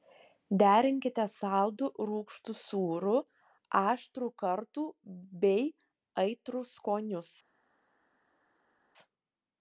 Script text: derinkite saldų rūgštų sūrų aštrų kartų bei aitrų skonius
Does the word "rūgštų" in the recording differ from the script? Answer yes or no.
no